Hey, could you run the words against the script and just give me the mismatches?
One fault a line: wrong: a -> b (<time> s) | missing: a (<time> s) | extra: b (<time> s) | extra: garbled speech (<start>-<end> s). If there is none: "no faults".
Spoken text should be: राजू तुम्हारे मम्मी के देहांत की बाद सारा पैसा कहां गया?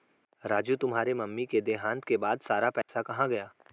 wrong: की -> के (2.0 s)